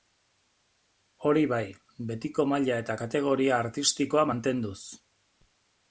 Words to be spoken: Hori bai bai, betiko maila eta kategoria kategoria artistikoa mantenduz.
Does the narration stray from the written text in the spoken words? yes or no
yes